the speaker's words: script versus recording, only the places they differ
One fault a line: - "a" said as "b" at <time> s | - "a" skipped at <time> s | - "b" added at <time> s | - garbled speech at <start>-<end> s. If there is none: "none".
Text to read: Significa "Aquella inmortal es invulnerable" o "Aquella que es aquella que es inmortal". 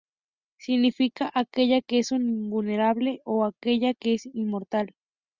- "inmortal" said as "que" at 1.8 s
- "aquella que es" skipped at 4.3 s